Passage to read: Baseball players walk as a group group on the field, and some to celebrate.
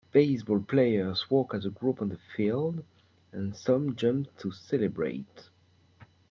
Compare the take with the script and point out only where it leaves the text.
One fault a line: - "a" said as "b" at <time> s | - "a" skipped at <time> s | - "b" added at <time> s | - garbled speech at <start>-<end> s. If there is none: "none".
- "group" skipped at 2.0 s
- "jump" added at 4.0 s